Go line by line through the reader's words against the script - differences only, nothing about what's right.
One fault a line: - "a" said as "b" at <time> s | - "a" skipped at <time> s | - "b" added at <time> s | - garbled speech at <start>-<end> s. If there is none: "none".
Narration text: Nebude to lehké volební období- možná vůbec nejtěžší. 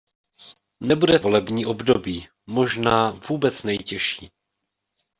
- "to lehké" skipped at 1.2 s